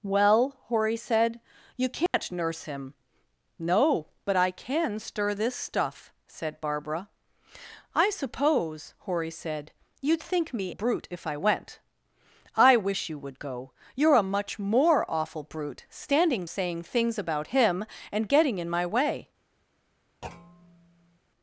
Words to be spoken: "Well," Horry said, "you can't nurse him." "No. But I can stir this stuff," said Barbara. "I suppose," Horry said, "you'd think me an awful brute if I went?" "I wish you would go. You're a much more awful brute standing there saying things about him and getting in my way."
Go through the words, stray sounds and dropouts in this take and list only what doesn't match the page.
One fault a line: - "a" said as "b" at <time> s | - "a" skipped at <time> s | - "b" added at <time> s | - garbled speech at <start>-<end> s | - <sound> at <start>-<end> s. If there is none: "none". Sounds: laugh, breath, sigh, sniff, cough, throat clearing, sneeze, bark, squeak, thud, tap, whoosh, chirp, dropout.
- dropout at 2.1-2.1 s
- "an awful" skipped at 10.7 s
- "there" skipped at 16.5 s
- thud at 20.2-21.2 s